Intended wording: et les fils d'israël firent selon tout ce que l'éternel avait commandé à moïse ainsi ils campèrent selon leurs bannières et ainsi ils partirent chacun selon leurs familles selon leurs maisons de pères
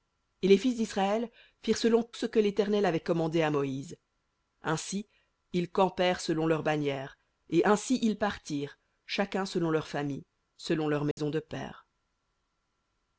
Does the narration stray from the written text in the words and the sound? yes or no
yes